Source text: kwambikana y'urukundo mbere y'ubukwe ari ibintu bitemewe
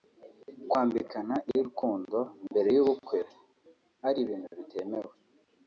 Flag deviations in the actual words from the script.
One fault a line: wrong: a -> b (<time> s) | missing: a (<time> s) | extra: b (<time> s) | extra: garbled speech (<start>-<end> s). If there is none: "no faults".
no faults